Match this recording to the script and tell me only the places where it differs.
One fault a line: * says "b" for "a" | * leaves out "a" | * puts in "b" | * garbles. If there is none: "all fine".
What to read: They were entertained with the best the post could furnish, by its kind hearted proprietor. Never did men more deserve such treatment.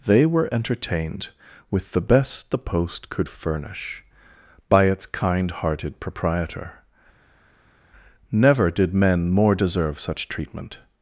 all fine